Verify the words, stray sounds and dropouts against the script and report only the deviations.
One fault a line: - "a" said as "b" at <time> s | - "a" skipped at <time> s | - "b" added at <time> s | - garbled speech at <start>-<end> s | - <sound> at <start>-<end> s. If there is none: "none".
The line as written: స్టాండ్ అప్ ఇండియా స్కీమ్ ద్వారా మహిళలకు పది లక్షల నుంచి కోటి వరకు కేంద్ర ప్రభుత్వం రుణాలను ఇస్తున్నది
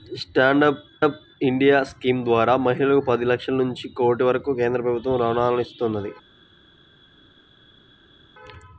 - "అప్" added at 1.0 s